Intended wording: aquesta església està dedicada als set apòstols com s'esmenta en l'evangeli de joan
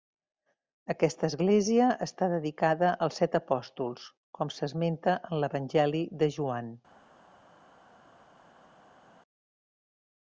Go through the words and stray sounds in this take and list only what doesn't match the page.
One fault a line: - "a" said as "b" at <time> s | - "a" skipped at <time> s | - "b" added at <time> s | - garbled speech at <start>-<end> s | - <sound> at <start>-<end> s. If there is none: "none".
none